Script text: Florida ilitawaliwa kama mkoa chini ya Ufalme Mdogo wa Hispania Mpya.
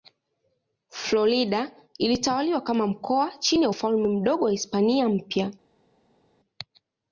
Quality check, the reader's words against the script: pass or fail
pass